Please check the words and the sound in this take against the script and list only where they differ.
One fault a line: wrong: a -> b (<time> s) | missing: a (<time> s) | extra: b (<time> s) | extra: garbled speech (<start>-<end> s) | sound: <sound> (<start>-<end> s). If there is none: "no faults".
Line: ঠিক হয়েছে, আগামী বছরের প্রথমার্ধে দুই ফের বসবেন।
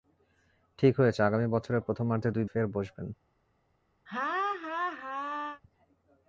sound: laugh (4.1-5.6 s)